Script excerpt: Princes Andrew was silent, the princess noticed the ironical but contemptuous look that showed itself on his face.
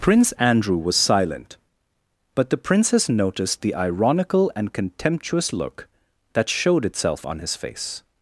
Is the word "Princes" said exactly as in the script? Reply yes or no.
no